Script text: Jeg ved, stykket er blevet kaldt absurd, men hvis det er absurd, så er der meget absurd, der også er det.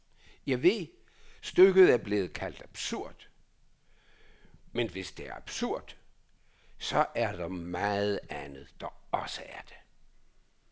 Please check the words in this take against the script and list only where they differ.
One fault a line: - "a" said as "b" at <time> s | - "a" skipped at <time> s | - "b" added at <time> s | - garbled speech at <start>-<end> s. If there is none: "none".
- "absurd" said as "andet" at 8.3 s